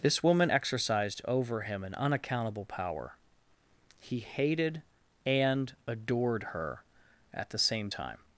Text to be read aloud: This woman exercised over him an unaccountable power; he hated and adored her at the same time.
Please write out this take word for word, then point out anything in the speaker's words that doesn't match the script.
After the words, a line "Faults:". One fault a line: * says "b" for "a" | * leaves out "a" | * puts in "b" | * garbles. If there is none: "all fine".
This woman exercised over him an unaccountable power; he hated and adored her at the same time.
Faults:
all fine